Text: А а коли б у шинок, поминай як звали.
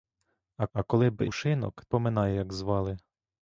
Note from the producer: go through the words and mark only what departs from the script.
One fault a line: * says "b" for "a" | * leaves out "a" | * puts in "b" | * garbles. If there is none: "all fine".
all fine